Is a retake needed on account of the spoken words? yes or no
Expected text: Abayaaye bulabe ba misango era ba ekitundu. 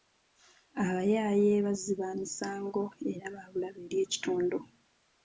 yes